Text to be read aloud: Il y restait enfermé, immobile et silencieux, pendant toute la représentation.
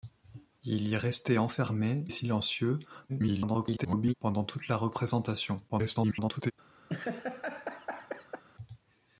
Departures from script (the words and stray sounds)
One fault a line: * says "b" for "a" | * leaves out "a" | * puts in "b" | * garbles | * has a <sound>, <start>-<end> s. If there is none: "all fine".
* leaves out "immobile"
* garbles
* garbles
* has a laugh, 6.9-8.4 s